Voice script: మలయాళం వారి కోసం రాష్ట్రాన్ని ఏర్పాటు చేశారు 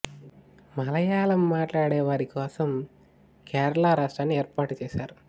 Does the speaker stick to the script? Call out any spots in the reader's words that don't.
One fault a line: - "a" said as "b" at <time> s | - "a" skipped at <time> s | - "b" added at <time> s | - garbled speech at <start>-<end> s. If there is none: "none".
- "మాట్లాడే" added at 1.5 s
- "కేరళ" added at 3.5 s